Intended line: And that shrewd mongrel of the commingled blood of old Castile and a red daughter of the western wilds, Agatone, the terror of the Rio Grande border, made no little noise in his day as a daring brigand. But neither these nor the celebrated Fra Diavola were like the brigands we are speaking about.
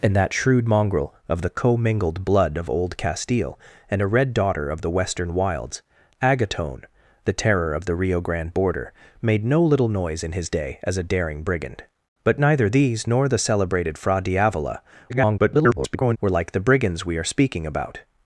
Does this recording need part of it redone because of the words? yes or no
yes